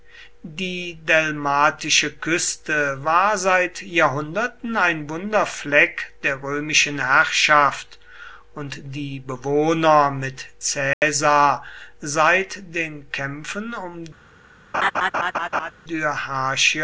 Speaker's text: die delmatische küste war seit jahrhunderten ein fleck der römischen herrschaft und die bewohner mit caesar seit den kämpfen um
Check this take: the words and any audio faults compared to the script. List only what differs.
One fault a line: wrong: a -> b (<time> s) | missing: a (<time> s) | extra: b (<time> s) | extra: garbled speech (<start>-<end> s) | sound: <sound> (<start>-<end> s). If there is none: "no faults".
extra: wunder (5.1 s)
sound: dropout (10.9-11.0 s)
sound: laugh (14.7-15.7 s)